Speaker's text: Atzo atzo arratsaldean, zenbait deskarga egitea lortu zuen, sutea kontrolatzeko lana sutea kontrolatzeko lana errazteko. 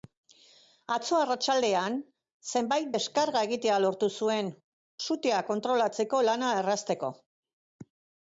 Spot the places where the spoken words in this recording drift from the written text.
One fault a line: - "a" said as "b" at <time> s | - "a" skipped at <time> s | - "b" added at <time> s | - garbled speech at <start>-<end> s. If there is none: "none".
- "atzo" skipped at 1.2 s
- "sutea kontrolatzeko lana" skipped at 6.5 s